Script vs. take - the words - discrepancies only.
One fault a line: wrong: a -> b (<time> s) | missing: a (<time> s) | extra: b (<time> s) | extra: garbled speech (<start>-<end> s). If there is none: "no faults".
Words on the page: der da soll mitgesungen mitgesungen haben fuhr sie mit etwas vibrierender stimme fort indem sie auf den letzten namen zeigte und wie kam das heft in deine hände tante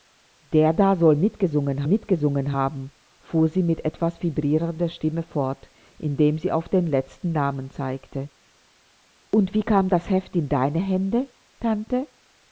no faults